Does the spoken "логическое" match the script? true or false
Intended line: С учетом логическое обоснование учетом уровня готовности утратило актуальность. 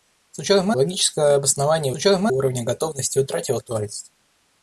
true